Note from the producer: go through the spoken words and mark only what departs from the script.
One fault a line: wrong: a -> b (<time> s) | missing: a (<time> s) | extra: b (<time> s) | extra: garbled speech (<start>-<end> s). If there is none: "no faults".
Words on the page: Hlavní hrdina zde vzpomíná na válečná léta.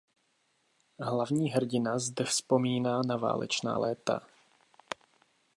no faults